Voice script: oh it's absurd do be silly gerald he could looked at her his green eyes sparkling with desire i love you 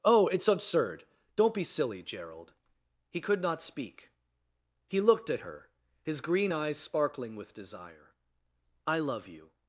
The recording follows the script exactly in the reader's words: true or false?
false